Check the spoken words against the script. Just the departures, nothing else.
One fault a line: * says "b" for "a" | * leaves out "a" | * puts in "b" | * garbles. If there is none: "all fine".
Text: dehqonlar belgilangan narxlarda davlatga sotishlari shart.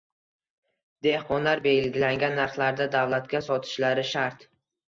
all fine